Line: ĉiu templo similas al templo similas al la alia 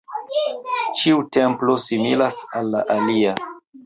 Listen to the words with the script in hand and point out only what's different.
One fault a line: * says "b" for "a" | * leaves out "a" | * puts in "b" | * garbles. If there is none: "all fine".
* leaves out "templo similas al"